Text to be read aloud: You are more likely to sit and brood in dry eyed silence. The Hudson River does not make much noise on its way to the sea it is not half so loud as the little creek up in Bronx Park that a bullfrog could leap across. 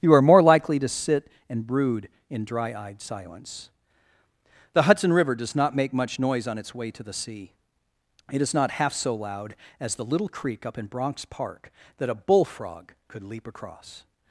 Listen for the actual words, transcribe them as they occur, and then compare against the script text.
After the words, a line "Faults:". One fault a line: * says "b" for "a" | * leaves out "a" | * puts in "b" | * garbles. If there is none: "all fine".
You are more likely to sit and brood in dry eyed silence. The Hudson River does not make much noise on its way to the sea it is not half so loud as the little creek up in Bronx Park that a bullfrog could leap across.
Faults:
all fine